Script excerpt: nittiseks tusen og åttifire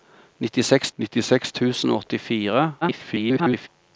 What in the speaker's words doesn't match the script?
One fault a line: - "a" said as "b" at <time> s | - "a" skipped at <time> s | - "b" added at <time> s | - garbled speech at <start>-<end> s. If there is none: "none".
- "nittiseks" added at 1.0 s
- garbled speech at 2.8-3.7 s